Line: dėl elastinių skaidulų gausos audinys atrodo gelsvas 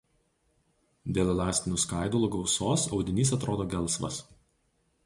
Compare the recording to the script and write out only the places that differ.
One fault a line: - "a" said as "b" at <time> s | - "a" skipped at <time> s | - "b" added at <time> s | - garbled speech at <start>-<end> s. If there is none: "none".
none